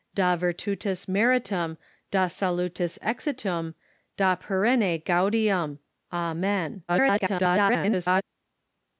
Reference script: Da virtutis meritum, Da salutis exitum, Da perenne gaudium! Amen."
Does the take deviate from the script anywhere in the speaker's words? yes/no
yes